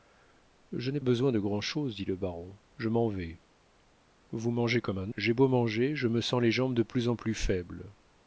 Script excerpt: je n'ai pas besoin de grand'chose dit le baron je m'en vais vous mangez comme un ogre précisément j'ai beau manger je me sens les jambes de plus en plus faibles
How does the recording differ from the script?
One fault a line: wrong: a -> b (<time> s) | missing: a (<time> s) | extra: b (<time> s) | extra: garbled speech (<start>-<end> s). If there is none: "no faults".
missing: pas (1.0 s)
missing: ogre précisément (5.1 s)